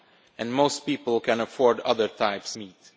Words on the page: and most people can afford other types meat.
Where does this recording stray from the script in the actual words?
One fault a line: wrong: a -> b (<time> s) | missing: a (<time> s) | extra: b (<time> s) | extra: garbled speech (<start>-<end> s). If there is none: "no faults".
no faults